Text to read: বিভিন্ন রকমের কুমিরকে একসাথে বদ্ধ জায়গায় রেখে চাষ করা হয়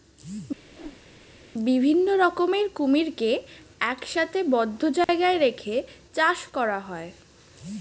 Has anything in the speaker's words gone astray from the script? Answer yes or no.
no